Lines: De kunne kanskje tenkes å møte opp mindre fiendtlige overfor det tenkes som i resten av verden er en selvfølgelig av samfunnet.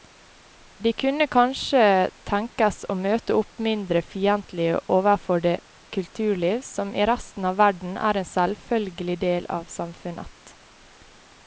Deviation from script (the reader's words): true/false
true